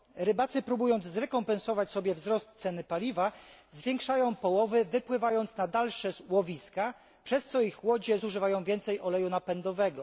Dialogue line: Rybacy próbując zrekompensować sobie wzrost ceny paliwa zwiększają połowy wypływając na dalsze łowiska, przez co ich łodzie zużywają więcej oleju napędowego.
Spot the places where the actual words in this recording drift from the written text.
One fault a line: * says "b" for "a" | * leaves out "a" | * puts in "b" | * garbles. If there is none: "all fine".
all fine